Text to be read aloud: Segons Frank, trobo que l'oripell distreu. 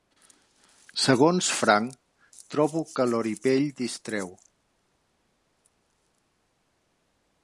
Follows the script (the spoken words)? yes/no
yes